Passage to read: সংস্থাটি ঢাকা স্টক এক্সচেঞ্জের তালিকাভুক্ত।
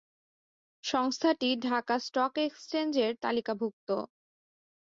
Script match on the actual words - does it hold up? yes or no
yes